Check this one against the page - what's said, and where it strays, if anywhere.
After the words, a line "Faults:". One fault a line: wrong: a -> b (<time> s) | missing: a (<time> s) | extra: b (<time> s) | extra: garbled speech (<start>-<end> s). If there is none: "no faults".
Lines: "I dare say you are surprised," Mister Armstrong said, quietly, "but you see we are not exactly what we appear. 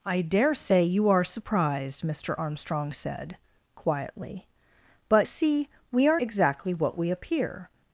"I dare say you are surprised," Mister Armstrong said, quietly, "but see we are exactly what we appear.
Faults:
missing: you (5.3 s)
missing: not (6.2 s)